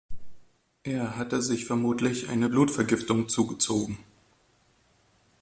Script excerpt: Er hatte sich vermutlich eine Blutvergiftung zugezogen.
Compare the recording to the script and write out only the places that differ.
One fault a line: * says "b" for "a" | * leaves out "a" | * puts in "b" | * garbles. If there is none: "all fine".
all fine